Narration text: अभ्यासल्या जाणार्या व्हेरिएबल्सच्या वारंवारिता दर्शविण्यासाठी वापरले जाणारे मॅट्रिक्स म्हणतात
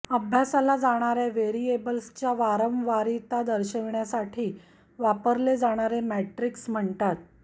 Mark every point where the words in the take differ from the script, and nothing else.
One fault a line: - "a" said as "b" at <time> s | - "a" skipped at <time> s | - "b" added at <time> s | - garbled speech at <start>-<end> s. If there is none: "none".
none